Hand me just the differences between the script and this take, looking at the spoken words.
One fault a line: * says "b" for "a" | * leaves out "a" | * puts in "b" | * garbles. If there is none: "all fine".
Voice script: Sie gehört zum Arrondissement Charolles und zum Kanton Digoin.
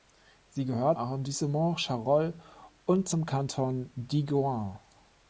* leaves out "zum"